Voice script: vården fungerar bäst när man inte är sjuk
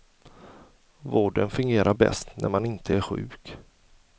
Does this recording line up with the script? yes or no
yes